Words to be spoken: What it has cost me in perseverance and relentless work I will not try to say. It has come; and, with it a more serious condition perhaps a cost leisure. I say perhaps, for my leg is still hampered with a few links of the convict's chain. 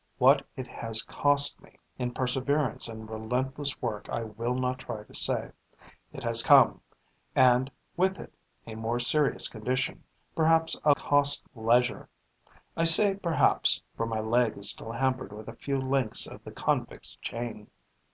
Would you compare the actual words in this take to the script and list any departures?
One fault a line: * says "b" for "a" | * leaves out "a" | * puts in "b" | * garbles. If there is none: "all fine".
all fine